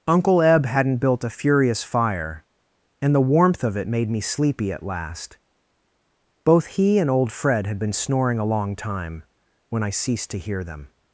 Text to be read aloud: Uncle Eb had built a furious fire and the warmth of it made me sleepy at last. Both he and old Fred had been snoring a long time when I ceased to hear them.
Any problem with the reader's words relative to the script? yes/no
yes